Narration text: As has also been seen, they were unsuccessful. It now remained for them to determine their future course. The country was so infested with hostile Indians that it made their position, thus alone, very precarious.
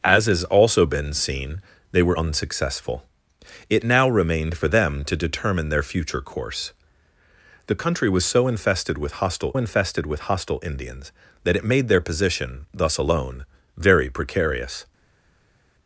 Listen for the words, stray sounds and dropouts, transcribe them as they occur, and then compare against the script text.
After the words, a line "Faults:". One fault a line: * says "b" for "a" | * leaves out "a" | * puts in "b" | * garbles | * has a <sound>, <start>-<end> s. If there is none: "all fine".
As has also been seen, they were unsuccessful. It now remained for them to determine their future course. The country was so infested with hostile infested with hostile Indians that it made their position, thus alone, very precarious.
Faults:
* puts in "infested with hostile"